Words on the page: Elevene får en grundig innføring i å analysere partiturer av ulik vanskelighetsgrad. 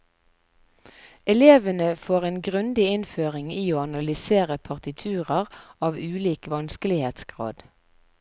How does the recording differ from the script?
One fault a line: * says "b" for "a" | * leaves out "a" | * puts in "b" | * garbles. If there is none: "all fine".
all fine